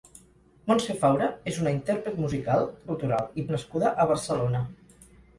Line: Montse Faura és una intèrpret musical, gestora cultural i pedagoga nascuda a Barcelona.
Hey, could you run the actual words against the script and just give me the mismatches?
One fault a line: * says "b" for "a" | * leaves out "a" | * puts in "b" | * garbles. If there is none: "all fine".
* leaves out "gestora"
* leaves out "pedagoga"